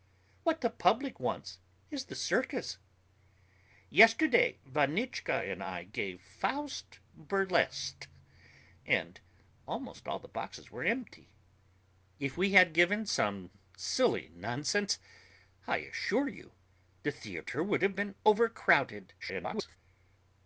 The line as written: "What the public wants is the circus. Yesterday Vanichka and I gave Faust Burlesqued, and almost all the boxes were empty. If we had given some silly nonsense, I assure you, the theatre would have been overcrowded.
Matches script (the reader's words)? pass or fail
fail